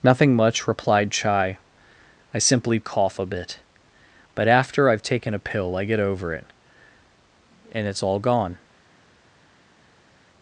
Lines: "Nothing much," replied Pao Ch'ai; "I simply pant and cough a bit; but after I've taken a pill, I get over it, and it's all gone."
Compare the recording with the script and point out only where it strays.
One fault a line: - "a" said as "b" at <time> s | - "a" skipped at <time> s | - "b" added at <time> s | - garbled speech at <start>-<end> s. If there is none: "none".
- "Pao" skipped at 1.1 s
- "pant and" skipped at 2.8 s